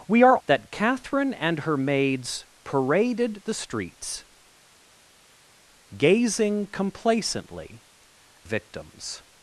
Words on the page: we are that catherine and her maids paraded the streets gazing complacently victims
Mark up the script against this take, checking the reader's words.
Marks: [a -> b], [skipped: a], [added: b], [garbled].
we are that catherine and her maids paraded the streets gazing complacently victims